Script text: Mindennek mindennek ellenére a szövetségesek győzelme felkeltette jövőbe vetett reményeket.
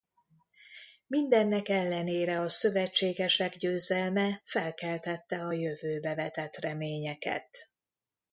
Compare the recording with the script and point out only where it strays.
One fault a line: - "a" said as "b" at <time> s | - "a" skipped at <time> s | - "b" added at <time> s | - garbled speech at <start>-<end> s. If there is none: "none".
- "mindennek" skipped at 1.7 s
- "a" added at 5.4 s